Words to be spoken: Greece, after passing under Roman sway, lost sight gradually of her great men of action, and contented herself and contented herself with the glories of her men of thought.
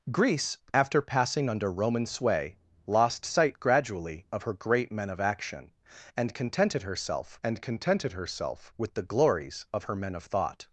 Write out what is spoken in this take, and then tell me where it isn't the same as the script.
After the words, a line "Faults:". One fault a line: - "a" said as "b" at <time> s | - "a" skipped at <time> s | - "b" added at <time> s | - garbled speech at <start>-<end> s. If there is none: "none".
Greece, after passing under Roman sway, lost sight gradually of her great men of action, and contented herself and contented herself with the glories of her men of thought.
Faults:
none